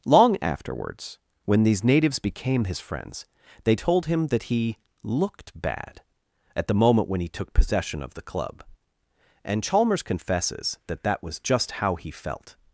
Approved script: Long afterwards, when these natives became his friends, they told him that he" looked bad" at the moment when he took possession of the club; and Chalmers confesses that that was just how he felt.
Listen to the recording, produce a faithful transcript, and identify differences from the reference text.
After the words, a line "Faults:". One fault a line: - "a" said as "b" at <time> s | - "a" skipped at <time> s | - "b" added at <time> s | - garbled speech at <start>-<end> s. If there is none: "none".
Long afterwards, when these natives became his friends, they told him that he" looked bad" at the moment when he took possession of the club; and Chalmers confesses that that was just how he felt.
Faults:
none